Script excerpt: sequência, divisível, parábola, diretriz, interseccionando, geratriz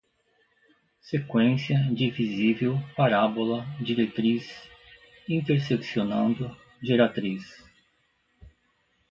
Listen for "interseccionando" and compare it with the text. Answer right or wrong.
right